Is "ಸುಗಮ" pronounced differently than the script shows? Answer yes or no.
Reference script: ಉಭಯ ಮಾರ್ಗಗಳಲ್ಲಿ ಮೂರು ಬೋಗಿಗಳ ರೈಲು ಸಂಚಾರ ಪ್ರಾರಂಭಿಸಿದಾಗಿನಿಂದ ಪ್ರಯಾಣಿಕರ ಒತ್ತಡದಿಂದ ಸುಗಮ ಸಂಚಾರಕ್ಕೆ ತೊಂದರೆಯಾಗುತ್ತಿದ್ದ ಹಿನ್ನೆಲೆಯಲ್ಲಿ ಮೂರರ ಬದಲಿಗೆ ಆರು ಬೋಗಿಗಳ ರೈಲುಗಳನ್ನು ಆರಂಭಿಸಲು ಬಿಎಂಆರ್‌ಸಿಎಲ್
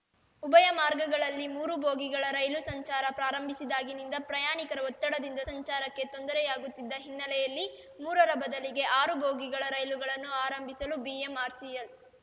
yes